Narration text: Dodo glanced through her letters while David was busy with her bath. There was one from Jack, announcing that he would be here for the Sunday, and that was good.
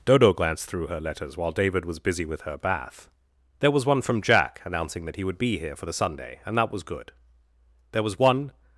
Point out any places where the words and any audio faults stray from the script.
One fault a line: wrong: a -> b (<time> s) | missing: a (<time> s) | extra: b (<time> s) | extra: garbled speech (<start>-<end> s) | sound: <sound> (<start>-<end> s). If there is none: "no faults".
extra: There was one (7.9 s)